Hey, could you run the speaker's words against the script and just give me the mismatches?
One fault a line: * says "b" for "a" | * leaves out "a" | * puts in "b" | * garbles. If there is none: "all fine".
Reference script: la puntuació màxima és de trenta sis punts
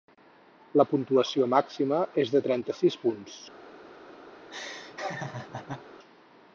all fine